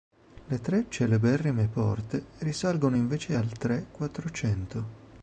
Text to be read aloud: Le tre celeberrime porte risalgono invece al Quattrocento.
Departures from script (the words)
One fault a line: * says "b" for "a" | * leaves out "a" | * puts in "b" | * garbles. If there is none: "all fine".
* puts in "Tre"